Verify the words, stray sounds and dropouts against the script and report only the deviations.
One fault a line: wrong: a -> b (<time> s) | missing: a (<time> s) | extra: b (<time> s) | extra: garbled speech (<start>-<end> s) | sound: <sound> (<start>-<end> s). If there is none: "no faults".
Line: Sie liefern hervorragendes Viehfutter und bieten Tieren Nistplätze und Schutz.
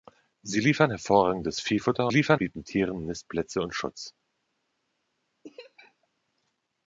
wrong: und -> liefern (2.1 s)
sound: laugh (5.4-6.1 s)